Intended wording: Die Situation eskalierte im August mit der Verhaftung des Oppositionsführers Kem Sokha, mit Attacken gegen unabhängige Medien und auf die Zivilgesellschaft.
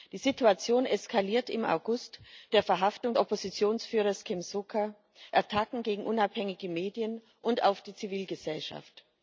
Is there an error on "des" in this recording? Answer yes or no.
yes